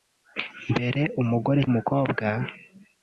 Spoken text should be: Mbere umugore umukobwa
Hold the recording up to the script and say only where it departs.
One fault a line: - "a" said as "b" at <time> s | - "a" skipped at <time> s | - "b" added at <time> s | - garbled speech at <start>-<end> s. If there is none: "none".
none